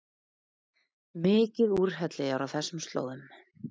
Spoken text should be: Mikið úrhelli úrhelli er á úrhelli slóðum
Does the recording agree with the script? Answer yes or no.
no